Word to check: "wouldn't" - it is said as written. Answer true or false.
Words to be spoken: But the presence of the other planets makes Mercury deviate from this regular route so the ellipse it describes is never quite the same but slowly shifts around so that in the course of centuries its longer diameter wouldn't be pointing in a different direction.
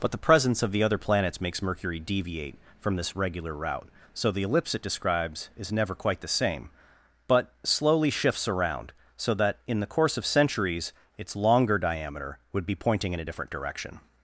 false